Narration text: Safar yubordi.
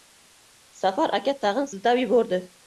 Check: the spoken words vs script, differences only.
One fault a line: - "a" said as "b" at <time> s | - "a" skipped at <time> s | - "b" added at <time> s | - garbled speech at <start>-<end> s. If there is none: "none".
- "aka tag‘in siltab" added at 1.2 s